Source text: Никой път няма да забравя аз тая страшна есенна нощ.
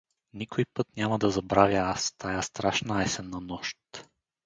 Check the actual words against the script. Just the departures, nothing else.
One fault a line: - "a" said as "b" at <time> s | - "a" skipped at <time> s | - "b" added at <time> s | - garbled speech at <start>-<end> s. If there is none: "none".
none